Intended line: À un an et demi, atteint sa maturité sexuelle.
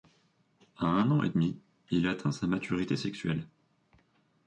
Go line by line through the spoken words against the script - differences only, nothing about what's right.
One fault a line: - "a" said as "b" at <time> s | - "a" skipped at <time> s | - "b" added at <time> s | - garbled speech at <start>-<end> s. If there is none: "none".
- "il" added at 1.9 s